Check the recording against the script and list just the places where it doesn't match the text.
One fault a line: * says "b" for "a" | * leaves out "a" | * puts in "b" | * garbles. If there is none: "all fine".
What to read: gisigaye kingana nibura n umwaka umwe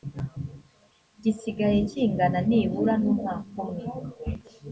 all fine